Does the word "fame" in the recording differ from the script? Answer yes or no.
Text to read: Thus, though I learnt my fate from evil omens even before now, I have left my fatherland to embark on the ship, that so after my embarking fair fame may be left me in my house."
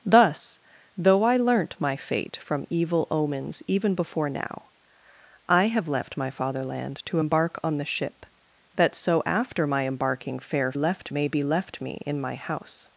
yes